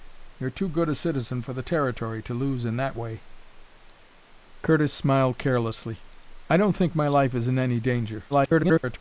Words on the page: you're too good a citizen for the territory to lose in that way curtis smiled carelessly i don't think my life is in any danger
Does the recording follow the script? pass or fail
fail